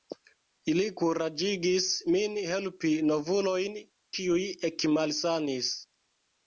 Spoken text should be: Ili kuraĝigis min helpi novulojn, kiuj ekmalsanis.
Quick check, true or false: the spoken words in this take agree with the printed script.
true